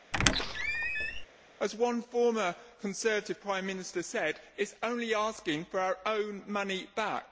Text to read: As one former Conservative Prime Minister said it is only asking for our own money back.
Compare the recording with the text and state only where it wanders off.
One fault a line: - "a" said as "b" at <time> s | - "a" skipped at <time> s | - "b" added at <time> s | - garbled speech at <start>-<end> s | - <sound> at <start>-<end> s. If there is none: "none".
- squeak at 0.1-1.3 s